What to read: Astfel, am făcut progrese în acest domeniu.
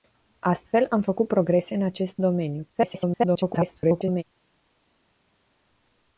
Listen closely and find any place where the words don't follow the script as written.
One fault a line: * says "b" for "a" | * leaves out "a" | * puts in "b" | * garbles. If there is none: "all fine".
* garbles